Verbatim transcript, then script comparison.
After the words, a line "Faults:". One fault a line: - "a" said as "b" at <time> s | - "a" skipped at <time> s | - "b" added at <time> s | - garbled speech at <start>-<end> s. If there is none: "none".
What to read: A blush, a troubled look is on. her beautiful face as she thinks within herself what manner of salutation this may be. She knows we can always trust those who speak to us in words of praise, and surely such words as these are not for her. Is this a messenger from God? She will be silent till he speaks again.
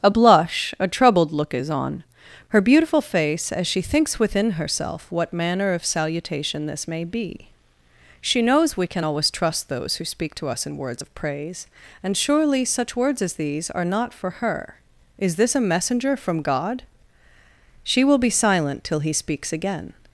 A blush, a troubled look is on. her beautiful face as she thinks within herself what manner of salutation this may be. She knows we can always trust those who speak to us in words of praise, and surely such words as these are not for her. Is this a messenger from God? She will be silent till he speaks again.
Faults:
none